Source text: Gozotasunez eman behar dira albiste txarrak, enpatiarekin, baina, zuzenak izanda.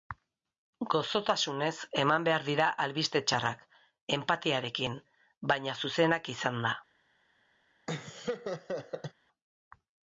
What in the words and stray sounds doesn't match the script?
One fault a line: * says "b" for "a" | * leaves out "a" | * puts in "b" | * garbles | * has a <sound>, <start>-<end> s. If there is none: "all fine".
* has a laugh, 7.9-9.1 s